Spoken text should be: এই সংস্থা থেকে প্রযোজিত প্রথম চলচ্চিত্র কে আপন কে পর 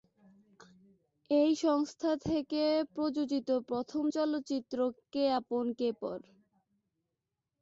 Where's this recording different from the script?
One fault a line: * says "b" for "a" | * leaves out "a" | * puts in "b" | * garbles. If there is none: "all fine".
all fine